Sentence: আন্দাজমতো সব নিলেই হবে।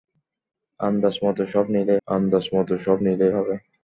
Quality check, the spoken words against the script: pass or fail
fail